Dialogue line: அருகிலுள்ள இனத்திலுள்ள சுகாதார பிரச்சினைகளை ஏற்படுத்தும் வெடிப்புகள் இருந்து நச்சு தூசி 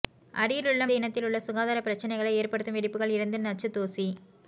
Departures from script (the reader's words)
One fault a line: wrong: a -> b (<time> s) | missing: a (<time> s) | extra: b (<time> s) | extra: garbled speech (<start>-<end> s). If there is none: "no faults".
no faults